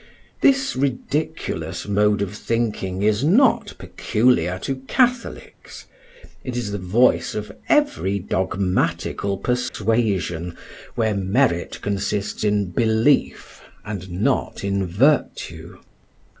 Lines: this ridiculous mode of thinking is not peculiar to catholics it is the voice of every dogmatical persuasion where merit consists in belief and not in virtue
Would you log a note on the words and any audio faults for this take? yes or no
yes